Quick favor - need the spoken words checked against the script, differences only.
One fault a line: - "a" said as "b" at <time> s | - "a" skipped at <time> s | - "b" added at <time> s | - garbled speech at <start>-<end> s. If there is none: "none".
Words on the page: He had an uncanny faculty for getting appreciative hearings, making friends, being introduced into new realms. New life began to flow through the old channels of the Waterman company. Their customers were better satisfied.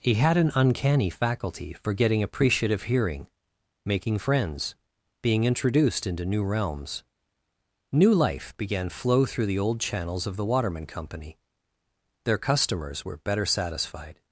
- "hearings" said as "hearing" at 2.8 s
- "to" skipped at 8.9 s